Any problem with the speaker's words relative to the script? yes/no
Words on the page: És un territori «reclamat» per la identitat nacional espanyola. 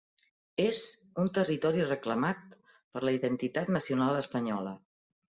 no